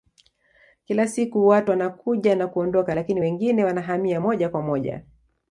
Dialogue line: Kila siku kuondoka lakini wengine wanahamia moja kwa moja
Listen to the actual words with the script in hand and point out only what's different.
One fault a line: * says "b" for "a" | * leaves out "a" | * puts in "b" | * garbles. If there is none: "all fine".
* puts in "watu wanakuja na"